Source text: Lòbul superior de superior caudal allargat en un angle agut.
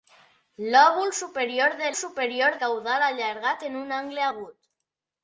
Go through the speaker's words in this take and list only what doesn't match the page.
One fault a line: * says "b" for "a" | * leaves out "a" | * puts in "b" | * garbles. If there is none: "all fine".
all fine